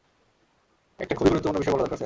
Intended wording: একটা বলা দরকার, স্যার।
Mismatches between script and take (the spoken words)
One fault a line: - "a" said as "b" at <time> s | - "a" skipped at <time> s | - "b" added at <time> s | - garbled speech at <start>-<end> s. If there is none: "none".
- "খুবই গুরুত্বপূর্ণ বিষয়" added at 1.1 s